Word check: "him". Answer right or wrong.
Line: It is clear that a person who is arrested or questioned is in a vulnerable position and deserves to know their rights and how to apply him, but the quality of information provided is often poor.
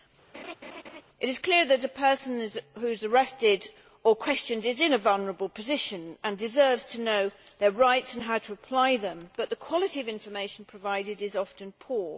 wrong